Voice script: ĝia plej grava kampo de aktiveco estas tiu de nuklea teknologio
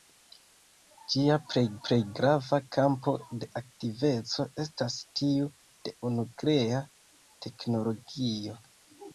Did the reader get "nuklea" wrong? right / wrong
right